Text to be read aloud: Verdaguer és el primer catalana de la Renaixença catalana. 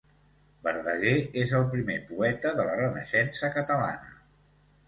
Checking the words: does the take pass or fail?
fail